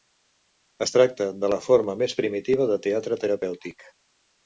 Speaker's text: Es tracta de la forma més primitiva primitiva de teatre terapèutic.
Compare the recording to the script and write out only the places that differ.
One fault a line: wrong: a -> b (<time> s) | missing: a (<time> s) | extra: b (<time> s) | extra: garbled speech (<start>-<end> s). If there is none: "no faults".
missing: primitiva (2.7 s)